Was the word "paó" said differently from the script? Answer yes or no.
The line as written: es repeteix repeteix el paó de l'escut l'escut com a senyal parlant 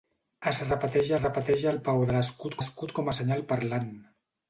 no